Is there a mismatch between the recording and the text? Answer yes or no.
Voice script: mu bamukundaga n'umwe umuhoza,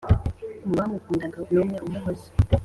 no